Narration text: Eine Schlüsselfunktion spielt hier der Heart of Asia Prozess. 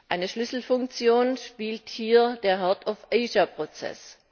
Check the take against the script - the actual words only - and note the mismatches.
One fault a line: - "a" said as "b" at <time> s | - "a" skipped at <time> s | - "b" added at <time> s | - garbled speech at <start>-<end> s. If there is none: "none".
none